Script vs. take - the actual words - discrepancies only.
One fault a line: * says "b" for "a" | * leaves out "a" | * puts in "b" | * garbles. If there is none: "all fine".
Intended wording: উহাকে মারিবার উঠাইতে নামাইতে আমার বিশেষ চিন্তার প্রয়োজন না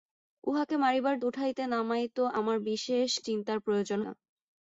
all fine